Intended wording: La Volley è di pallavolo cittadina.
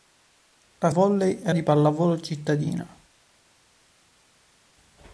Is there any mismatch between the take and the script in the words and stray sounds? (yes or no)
no